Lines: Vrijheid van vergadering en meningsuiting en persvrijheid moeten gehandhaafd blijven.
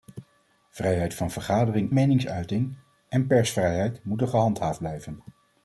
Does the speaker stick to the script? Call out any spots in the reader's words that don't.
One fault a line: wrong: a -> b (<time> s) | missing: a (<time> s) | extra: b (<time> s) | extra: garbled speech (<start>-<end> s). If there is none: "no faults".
missing: en (1.9 s)